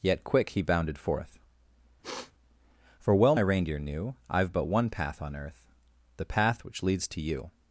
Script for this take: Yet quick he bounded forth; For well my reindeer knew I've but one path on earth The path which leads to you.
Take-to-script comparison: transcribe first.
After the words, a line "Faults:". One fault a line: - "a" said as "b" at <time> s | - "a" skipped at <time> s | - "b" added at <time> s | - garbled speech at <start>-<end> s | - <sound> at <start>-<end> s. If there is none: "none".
Yet quick he bounded forth; For well reindeer knew I've but one path on earth The path which leads to you.
Faults:
- sniff at 2.0-2.3 s
- "my" skipped at 3.4 s